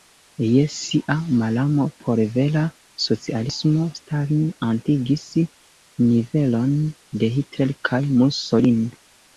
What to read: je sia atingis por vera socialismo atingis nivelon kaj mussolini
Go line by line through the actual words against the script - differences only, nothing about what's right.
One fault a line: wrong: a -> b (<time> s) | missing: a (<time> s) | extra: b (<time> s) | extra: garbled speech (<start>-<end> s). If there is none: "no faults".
wrong: atingis -> malamo (1.4 s)
extra: stalin (4.0 s)
extra: de hitler (7.2 s)